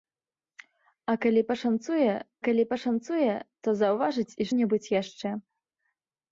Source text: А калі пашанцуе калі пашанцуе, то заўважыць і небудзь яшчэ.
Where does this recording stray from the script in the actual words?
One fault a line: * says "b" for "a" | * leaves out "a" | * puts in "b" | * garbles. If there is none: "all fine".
all fine